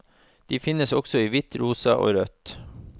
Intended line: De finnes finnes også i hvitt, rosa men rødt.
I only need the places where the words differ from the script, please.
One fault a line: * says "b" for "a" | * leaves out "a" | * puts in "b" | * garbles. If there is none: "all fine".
* leaves out "finnes"
* says "og" for "men"